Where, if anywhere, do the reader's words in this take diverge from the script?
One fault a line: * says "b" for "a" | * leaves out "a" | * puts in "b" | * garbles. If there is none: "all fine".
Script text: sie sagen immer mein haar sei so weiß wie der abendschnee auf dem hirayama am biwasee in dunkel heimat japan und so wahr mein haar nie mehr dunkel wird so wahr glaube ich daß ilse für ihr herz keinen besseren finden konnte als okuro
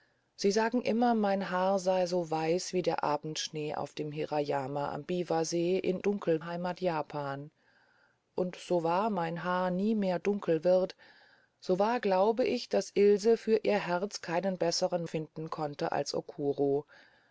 all fine